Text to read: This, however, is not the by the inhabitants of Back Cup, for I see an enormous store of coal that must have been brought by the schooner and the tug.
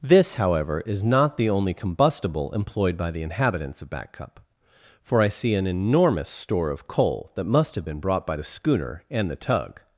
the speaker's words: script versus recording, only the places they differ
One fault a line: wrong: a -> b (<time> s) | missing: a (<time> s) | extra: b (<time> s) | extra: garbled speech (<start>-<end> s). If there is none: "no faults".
extra: only combustible employed (1.5 s)